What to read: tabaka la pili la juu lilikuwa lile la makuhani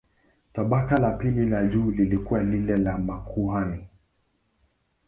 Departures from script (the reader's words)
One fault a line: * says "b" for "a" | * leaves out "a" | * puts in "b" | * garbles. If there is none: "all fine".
all fine